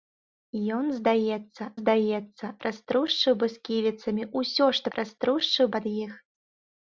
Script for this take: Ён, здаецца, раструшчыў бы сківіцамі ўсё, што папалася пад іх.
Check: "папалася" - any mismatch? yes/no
yes